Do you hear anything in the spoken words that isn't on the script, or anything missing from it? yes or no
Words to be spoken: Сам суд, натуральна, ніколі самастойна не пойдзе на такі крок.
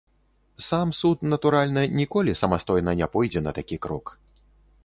no